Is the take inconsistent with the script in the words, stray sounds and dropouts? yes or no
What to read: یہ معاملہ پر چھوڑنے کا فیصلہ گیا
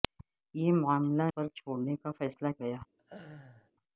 yes